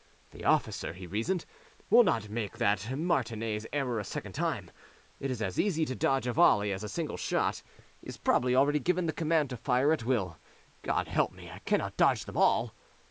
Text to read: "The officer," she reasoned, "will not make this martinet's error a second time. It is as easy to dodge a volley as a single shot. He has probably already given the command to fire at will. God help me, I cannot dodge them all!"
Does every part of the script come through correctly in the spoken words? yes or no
no